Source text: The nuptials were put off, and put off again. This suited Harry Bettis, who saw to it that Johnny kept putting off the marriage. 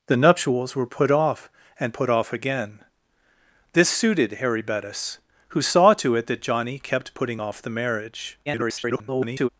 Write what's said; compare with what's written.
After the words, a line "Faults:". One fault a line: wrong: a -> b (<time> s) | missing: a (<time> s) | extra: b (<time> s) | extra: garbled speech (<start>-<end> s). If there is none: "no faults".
The nuptials were put off, and put off again. This suited Harry Bettis, who saw to it that Johnny kept putting off the marriage. [garbled]
Faults:
extra: garbled speech (8.5-9.5 s)